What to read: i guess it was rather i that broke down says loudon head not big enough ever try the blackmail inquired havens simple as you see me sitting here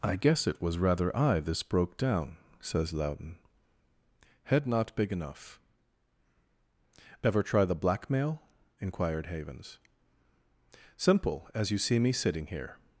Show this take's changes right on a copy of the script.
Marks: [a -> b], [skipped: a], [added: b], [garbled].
i guess it was rather i [that -> this] broke down says loudon head not big enough ever try the blackmail inquired havens simple as you see me sitting here